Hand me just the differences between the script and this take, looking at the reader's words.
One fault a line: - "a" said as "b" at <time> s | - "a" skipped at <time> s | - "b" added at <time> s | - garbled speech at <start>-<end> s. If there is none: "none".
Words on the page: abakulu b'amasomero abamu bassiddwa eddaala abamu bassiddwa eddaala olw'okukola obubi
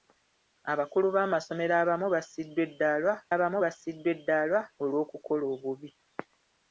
none